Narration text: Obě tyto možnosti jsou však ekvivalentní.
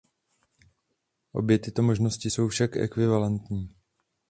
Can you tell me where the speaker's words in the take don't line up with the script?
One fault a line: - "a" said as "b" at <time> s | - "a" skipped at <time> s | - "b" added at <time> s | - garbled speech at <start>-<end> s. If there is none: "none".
none